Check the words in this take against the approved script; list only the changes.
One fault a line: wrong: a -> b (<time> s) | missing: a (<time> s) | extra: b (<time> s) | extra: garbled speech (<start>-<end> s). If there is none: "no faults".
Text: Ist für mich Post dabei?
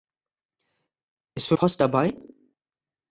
missing: mich (1.6 s)